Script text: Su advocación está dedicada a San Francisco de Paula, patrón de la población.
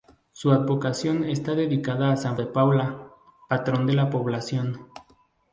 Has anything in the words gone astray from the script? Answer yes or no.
yes